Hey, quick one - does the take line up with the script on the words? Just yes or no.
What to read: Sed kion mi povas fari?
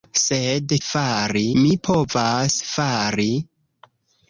no